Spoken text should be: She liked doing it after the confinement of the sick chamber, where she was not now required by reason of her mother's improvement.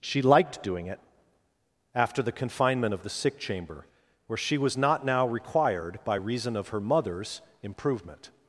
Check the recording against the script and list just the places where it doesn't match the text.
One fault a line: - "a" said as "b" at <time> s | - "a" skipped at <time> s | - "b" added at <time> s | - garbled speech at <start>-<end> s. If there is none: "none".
none